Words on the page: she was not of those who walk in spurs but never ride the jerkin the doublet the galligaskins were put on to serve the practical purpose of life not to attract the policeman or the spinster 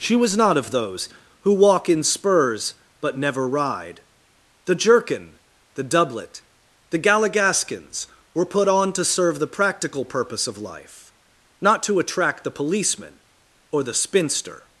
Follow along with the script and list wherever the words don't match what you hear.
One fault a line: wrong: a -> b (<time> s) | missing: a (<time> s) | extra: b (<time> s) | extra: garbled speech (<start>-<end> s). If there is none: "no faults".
no faults